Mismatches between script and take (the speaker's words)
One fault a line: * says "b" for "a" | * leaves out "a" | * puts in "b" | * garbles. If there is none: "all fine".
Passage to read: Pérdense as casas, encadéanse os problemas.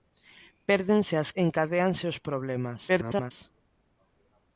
* leaves out "casas"
* garbles